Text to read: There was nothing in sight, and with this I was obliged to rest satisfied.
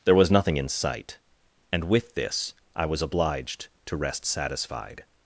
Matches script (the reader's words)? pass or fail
pass